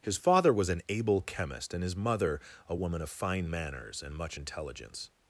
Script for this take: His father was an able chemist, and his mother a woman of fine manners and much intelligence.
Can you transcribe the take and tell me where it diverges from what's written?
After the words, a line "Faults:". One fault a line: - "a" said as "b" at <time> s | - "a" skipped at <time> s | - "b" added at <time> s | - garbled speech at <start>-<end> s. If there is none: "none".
His father was an able chemist, and his mother a woman of fine manners and much intelligence.
Faults:
none